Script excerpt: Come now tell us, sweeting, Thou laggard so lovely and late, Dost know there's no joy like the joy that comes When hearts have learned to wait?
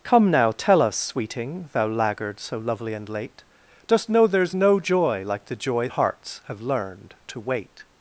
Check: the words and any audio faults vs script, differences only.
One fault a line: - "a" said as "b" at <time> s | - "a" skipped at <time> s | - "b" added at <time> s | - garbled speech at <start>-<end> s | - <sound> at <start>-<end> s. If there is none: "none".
- "that comes When" skipped at 5.9 s